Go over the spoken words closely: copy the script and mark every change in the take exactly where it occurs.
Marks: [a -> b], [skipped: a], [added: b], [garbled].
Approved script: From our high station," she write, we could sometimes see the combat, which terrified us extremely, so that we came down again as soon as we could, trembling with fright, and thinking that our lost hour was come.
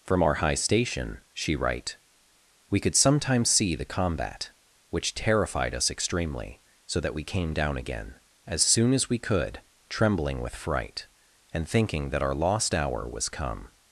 From our high station," she write, we could sometimes see the combat, which terrified us extremely, so that we came down again as soon as we could, trembling with fright, and thinking that our lost hour was come.